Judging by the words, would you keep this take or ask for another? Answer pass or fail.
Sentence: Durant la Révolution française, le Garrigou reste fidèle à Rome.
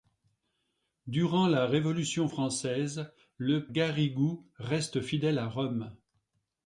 pass